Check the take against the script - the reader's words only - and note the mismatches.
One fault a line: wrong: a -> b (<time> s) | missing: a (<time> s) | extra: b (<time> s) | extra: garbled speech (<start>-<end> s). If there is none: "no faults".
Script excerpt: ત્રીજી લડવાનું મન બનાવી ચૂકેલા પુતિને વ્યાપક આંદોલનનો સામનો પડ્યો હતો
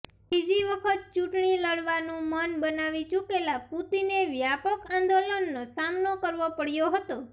extra: વખત ચૂંટણી (0.7 s)
extra: કરવો (6.2 s)